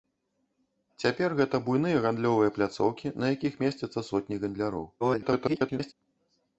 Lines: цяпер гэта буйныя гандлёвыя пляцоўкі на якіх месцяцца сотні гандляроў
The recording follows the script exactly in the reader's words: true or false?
false